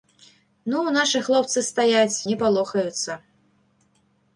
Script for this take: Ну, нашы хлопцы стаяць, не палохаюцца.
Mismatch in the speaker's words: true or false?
false